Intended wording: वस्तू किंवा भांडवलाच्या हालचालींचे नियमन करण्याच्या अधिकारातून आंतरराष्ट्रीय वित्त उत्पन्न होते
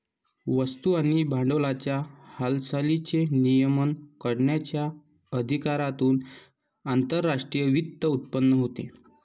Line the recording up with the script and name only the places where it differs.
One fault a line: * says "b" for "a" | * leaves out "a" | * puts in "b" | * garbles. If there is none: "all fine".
* says "आणि" for "किंवा"